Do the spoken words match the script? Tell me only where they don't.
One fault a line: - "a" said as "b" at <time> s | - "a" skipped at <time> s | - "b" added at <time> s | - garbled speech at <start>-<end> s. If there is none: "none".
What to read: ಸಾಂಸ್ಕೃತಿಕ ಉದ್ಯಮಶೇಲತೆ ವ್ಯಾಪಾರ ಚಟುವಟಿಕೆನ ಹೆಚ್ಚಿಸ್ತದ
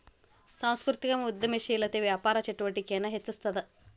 none